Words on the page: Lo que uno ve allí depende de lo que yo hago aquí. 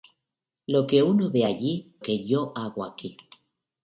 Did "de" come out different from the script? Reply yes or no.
yes